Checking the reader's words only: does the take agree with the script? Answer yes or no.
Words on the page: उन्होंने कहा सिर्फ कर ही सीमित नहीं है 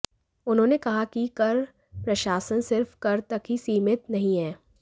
no